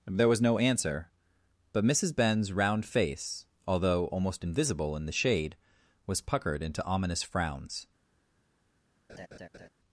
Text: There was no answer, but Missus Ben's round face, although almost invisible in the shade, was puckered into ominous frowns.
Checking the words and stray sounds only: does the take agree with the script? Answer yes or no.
no